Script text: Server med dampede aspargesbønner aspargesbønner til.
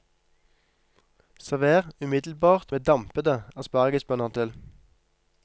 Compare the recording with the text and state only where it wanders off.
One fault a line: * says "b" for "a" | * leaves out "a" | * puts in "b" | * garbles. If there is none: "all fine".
* puts in "umiddelbart"
* leaves out "aspargesbønner"